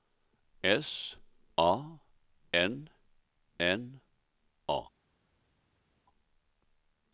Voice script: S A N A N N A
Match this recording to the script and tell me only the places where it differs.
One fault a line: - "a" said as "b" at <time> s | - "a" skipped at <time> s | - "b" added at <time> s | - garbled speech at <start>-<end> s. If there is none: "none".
- "A N" skipped at 2.9 s